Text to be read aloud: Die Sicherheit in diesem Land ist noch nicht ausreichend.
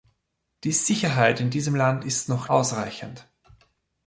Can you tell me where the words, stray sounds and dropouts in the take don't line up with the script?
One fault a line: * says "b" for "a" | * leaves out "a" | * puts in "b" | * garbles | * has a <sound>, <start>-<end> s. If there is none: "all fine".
* leaves out "nicht"